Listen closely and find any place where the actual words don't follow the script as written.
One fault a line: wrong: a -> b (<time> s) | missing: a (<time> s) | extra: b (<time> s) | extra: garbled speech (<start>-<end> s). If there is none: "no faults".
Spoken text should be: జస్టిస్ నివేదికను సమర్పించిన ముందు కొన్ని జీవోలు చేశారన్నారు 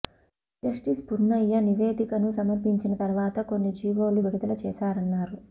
extra: పున్నయ్య (1.1 s)
wrong: ముందు -> తర్వాత (3.0 s)
extra: విడుదల (4.3 s)